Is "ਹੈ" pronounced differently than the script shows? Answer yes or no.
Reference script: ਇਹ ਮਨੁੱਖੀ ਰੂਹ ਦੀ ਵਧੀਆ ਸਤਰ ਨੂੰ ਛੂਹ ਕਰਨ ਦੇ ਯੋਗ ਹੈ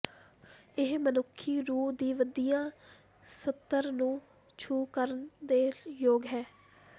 no